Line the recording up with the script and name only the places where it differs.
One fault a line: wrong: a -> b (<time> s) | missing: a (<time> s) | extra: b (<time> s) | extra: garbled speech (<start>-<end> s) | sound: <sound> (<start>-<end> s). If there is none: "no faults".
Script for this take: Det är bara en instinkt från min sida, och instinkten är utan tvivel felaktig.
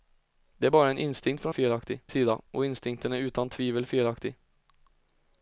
wrong: min -> felaktig (1.5 s)